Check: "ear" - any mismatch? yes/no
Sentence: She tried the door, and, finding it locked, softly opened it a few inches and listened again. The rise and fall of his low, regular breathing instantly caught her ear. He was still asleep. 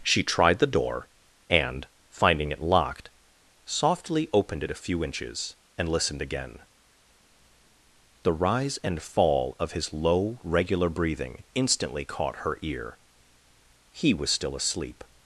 no